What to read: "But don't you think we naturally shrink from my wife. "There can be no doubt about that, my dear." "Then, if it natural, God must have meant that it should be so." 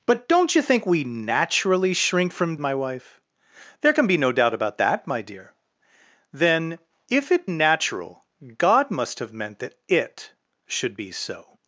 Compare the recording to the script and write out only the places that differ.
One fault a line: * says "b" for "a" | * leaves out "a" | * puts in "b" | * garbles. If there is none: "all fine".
all fine